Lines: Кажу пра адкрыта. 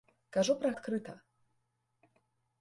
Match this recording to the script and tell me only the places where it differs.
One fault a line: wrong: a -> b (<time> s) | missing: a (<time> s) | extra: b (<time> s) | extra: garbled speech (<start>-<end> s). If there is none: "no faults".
no faults